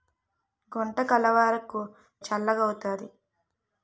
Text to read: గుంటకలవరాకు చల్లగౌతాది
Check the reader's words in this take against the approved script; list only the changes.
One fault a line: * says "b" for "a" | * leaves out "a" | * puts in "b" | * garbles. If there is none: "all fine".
all fine